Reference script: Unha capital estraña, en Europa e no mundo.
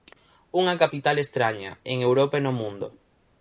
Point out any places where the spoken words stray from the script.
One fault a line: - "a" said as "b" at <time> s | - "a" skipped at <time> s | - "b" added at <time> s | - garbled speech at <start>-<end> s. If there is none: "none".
none